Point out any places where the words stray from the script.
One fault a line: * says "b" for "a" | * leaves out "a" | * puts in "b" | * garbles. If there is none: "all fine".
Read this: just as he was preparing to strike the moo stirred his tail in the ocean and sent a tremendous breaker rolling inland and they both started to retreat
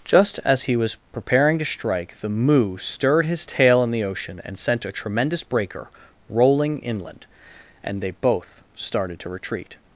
all fine